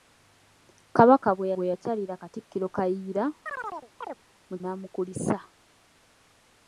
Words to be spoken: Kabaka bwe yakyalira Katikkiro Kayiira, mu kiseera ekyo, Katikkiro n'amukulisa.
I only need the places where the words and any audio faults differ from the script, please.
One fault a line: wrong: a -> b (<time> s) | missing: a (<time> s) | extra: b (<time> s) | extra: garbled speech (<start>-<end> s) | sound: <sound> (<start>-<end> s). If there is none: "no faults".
extra: bwe (1.5 s)
sound: chirp (3.5-4.2 s)
missing: kiseera ekyo Katikkiro (4.5 s)